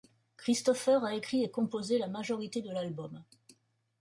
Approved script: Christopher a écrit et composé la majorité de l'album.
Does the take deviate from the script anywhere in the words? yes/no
no